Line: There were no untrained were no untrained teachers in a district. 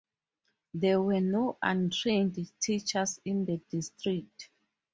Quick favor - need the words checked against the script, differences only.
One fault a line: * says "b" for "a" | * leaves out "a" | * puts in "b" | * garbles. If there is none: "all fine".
* leaves out "were no untrained"
* says "the" for "a"